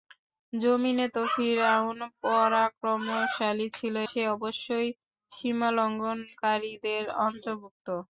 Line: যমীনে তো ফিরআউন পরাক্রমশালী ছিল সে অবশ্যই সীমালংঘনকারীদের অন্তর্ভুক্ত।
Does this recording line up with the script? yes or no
yes